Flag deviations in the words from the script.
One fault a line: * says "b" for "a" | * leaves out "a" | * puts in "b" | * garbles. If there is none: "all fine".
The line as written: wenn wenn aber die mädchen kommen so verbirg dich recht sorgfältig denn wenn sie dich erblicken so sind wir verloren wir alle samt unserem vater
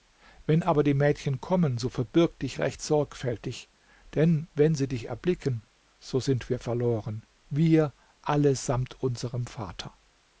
* leaves out "wenn"